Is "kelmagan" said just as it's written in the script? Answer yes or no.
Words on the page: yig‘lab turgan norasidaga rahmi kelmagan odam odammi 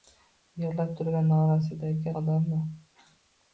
no